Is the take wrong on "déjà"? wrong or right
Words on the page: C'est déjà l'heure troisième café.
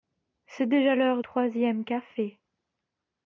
right